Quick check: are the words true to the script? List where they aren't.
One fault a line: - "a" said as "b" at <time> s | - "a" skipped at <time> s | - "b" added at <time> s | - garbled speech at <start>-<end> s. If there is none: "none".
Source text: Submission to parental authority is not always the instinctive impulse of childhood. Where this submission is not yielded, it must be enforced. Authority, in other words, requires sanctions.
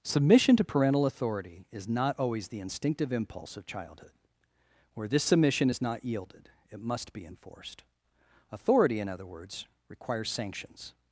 none